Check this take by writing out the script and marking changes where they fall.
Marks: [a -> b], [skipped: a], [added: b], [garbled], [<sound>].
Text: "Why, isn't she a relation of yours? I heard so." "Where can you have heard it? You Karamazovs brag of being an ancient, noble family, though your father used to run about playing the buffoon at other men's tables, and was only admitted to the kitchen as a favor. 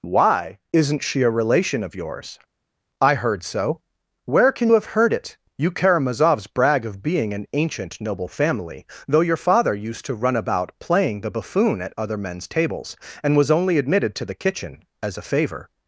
"Why, isn't she a relation of yours? I heard so." "Where can [skipped: you] have heard it? You Karamazovs brag of being an ancient, noble family, though your father used to run about playing the buffoon at other men's tables, and was only admitted to the kitchen as a favor.